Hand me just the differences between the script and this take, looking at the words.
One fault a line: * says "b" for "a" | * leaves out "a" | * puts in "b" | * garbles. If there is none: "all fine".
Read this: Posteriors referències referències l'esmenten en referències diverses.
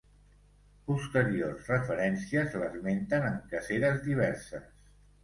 * leaves out "referències"
* says "caceres" for "referències"